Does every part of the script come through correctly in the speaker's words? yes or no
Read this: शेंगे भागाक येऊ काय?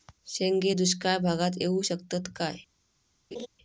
no